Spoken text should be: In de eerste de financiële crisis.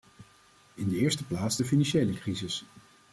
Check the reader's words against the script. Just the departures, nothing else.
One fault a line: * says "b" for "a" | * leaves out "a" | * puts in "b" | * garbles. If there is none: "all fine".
* puts in "plaats"